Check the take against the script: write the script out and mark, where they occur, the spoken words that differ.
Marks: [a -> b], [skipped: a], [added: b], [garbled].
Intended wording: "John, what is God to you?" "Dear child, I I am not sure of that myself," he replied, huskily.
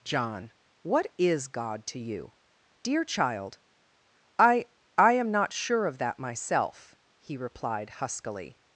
"John, what is God to you?" "Dear child, I I am not sure of that myself," he replied, huskily.